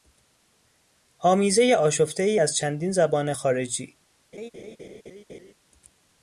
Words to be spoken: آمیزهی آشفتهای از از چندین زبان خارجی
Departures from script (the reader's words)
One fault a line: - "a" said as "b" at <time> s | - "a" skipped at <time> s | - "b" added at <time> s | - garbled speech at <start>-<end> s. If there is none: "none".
- "از" skipped at 2.6 s